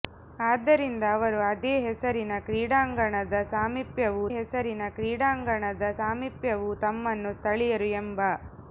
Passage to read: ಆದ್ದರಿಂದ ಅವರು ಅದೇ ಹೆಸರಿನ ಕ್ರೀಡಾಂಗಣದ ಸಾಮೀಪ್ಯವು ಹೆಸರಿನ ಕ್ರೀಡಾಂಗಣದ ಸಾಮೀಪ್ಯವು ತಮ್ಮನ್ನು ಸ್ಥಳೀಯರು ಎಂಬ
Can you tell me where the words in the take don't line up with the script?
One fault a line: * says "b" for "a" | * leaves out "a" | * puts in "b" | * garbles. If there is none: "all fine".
all fine